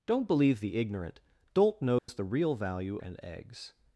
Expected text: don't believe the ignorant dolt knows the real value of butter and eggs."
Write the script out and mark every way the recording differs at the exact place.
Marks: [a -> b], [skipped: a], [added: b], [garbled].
don't believe the ignorant dolt knows the real value [skipped: of butter] and eggs."